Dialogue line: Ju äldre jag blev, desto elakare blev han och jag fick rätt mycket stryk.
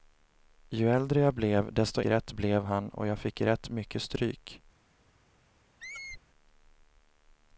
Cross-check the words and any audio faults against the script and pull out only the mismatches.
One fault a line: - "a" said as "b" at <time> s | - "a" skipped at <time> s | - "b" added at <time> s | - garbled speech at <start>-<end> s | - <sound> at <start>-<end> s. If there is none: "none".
- "elakare" said as "rätt" at 2.0 s
- squeak at 5.8-6.2 s